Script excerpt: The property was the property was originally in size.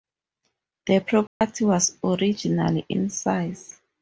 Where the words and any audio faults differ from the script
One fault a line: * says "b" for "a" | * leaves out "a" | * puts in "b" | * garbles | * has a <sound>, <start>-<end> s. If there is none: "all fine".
* has a dropout, 1.3-1.4 s
* leaves out "the property was"